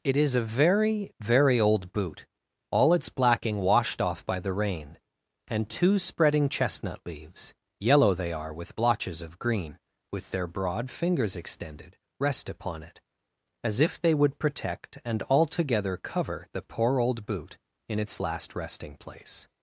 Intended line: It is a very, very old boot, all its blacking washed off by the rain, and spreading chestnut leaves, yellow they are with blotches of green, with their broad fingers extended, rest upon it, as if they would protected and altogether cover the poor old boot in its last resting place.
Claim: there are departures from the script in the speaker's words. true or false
true